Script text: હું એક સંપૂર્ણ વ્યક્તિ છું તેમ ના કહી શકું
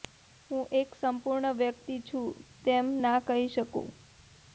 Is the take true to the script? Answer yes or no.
yes